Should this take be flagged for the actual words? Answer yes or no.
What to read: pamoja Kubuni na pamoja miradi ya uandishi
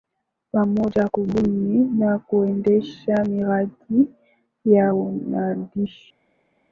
yes